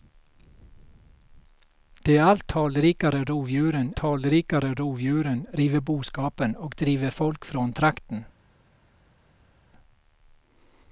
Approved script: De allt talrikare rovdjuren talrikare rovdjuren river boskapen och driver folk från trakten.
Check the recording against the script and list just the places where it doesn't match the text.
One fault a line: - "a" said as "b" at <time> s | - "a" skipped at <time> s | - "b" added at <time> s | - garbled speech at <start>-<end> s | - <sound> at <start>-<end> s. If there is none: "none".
none